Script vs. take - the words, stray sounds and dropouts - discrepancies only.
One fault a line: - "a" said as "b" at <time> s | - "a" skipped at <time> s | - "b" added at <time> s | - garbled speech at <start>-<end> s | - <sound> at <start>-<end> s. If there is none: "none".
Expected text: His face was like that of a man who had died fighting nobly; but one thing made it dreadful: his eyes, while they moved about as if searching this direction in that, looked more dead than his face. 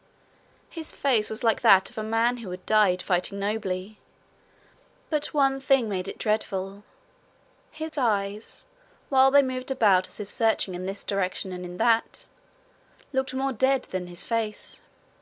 - dropout at 7.9-7.9 s
- "in" added at 10.7 s
- "and" added at 11.5 s